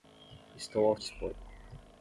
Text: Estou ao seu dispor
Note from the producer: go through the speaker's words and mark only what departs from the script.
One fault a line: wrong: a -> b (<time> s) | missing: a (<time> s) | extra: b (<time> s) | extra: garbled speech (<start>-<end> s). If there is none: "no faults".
missing: seu (1.0 s)